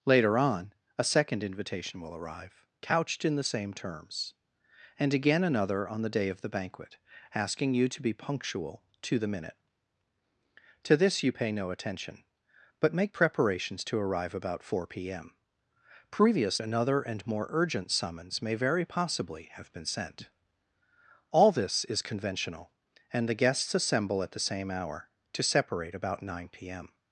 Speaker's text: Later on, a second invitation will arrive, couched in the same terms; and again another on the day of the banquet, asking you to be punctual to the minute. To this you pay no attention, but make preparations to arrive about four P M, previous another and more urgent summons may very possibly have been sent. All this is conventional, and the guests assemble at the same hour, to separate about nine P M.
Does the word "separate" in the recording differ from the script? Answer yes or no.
no